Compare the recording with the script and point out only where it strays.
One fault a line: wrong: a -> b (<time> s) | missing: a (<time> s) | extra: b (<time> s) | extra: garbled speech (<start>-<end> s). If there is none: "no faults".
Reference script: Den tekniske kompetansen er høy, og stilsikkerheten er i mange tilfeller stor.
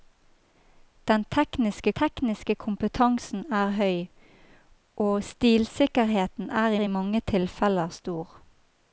extra: tekniske (2.0 s)
extra: i (6.7 s)